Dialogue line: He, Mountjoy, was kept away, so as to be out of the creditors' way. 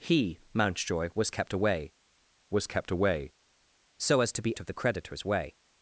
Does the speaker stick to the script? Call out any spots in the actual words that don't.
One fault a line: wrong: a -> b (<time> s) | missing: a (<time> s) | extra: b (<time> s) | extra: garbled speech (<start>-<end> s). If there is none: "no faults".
extra: was kept away (2.5 s)
missing: out (4.6 s)